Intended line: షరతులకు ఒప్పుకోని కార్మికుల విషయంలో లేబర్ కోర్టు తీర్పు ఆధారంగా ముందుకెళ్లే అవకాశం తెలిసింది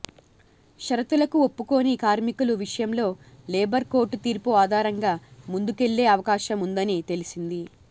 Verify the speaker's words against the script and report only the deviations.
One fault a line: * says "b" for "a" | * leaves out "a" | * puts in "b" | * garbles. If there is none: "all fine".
* puts in "ఉందని"